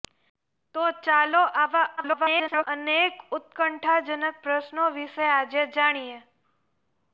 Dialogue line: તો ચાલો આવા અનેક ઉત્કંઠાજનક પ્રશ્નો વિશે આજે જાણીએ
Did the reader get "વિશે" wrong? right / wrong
right